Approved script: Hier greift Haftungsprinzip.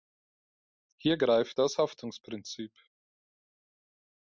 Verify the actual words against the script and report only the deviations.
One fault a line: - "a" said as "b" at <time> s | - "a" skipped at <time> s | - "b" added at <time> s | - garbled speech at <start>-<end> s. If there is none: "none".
- "das" added at 1.6 s